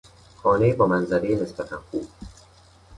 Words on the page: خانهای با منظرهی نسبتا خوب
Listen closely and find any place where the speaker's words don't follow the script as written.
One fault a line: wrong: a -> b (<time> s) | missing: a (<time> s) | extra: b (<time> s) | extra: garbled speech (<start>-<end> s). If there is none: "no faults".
no faults